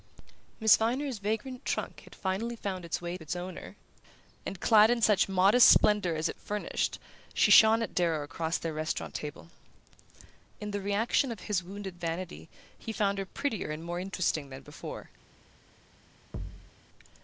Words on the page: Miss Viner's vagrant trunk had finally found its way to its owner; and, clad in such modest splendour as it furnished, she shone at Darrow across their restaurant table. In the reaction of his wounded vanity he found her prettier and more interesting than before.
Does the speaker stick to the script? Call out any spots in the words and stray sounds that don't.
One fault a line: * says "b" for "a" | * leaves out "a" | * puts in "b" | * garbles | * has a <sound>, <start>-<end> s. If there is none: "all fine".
* leaves out "to"
* has a thud, 16.3-16.7 s